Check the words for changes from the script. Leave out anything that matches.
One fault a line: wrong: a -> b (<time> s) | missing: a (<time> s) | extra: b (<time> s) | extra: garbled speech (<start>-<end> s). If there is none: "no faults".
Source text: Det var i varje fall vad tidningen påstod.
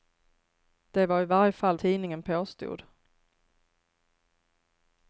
missing: vad (1.8 s)